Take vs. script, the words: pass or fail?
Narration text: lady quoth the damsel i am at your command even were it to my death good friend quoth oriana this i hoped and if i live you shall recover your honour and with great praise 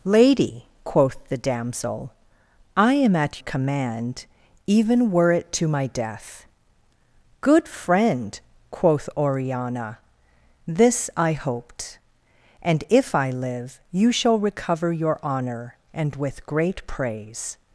fail